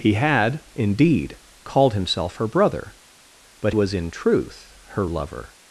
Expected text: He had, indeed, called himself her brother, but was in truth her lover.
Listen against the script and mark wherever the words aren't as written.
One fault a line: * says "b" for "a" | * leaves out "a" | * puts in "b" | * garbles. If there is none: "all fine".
all fine